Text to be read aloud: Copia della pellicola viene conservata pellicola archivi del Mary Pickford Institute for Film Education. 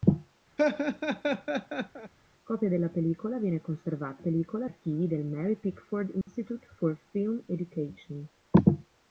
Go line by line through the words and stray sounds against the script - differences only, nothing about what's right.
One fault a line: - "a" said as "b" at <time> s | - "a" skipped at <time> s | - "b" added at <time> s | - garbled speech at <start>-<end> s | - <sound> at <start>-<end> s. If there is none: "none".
- laugh at 0.6-2.1 s
- dropout at 6.2-6.3 s